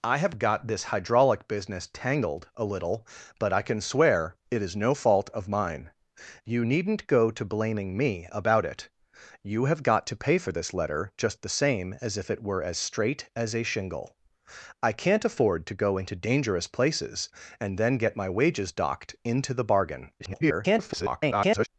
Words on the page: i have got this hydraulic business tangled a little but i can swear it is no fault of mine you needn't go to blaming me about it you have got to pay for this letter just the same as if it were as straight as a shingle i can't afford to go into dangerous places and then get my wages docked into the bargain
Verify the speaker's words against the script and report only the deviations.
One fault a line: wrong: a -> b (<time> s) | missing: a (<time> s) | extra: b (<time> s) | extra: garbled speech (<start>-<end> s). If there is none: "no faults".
extra: garbled speech (20.2-21.7 s)